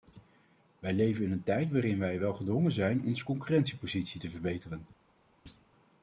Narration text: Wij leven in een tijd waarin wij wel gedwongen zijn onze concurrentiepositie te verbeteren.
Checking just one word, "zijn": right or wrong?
right